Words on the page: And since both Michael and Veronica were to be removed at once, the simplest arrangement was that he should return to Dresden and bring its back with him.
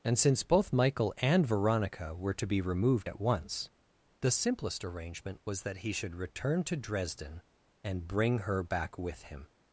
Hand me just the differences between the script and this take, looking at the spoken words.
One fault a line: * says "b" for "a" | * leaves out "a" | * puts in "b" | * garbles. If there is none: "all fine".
* says "her" for "its"